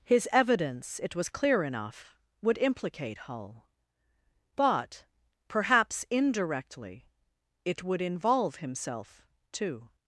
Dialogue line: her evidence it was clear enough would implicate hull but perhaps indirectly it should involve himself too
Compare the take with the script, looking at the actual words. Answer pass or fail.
fail